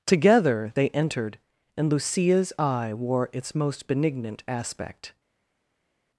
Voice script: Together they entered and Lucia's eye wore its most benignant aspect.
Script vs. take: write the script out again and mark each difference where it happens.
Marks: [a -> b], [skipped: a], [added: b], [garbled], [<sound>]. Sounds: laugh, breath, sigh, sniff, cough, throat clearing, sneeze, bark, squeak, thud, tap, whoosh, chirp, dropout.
Together they entered and Lucia's eye wore its most benignant aspect.